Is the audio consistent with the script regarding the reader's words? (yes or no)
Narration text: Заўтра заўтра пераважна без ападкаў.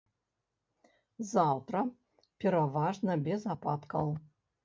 no